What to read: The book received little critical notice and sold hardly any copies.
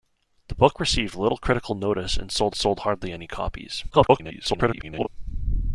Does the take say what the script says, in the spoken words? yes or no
no